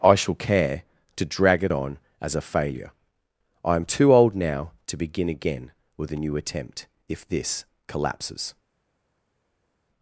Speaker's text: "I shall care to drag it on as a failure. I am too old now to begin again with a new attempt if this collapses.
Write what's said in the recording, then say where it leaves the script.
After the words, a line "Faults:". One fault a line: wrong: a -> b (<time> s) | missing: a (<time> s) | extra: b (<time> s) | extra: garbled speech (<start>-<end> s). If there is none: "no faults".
"I shall care to drag it on as a failure. I am too old now to begin again with a new attempt if this collapses.
Faults:
no faults